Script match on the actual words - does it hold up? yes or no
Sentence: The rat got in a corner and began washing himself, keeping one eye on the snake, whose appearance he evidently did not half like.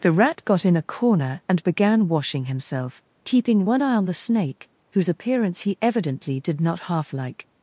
yes